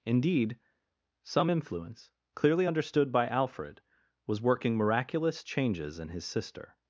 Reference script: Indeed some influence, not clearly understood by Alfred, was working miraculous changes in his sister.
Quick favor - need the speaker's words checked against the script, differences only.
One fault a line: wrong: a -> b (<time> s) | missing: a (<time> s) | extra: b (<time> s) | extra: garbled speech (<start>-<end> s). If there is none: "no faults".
missing: not (2.1 s)